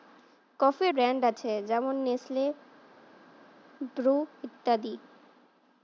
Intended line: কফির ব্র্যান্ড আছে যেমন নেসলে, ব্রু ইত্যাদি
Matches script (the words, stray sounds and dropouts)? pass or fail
pass